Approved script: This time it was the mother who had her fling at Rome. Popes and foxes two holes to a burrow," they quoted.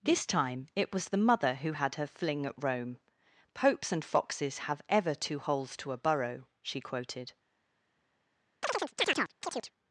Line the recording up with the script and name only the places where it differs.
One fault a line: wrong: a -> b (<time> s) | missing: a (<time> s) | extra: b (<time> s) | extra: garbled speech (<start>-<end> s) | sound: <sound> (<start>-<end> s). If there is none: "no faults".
extra: have ever (4.6 s)
wrong: they -> she (6.6 s)
sound: chirp (8.6-9.7 s)